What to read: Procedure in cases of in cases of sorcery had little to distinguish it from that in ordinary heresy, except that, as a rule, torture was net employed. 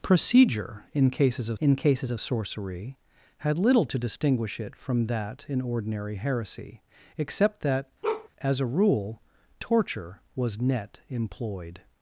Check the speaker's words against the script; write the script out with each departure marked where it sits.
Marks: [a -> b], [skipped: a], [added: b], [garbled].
Procedure in cases of in cases of sorcery had little to distinguish it from that in ordinary heresy, except that, as a rule, torture was net employed.